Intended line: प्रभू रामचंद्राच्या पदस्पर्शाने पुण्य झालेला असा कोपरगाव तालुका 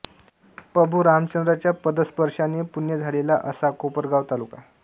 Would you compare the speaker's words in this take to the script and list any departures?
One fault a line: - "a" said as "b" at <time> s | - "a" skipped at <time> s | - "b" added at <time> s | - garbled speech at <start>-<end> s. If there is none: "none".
none